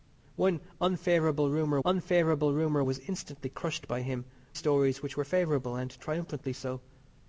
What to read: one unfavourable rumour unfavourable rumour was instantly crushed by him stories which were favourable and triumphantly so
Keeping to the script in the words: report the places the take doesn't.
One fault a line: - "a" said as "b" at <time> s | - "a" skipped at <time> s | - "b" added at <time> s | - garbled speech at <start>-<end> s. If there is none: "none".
none